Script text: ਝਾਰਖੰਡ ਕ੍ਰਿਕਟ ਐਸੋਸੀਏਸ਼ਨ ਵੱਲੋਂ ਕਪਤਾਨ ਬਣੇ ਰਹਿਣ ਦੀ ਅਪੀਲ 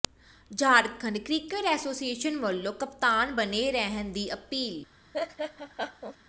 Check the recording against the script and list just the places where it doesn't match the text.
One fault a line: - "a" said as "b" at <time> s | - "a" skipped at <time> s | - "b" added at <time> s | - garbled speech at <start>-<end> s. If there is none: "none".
none